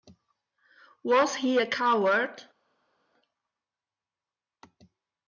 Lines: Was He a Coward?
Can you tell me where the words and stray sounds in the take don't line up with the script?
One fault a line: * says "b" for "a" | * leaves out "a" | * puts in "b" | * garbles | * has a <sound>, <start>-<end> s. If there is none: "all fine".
all fine